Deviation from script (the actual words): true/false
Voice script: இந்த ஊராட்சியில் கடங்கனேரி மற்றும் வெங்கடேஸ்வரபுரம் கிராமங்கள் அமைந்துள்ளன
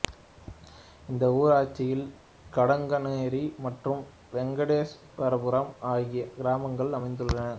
true